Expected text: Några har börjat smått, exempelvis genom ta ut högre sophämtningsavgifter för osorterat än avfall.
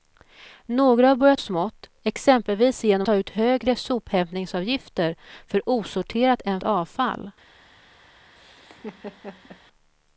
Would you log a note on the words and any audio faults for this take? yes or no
yes